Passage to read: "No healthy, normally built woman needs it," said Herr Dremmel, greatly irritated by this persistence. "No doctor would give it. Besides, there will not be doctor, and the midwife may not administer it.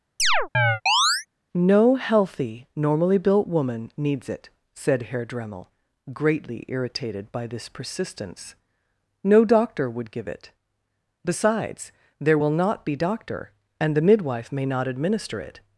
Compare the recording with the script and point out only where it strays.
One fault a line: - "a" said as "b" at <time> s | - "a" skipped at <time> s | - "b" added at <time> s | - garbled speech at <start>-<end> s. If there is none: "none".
none